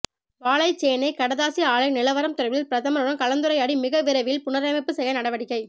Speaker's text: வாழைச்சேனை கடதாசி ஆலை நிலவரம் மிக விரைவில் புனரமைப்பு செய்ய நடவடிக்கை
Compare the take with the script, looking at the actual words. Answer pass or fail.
fail